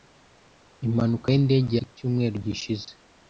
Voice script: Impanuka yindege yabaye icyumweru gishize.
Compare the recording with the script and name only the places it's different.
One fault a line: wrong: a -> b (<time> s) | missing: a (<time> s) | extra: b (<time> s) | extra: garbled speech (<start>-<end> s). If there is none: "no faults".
missing: yabaye (1.7 s)